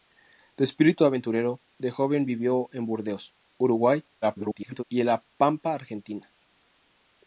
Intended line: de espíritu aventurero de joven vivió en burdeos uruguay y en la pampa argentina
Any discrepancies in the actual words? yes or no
yes